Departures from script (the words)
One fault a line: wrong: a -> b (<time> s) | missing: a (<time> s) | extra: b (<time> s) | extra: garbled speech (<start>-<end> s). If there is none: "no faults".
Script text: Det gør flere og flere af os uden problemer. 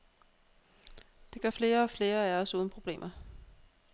no faults